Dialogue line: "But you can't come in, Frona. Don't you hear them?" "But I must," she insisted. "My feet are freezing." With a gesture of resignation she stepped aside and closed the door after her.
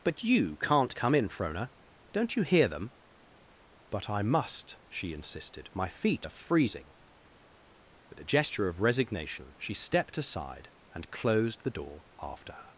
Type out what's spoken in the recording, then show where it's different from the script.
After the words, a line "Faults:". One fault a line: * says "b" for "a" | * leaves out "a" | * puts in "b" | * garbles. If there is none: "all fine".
"But you can't come in, Frona. Don't you hear them?" "But I must," she insisted. "My feet are freezing." With a gesture of resignation she stepped aside and closed the door after her.
Faults:
all fine